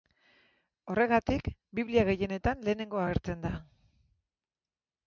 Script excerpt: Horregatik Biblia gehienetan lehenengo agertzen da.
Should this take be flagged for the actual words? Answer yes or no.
no